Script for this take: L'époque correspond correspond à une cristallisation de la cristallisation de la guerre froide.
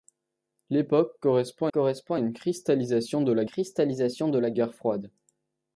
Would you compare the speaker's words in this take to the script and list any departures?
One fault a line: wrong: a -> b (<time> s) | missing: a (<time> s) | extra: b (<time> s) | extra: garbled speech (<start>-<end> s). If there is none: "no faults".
no faults